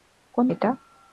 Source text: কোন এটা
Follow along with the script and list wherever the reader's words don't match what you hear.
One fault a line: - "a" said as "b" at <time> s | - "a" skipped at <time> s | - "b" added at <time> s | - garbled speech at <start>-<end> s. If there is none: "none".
none